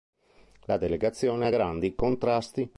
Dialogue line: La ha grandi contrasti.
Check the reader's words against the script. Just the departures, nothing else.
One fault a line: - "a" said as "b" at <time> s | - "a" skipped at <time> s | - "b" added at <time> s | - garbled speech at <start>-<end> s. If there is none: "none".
- "delegazione" added at 0.8 s